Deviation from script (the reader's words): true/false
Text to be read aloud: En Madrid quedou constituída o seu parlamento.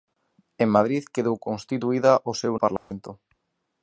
false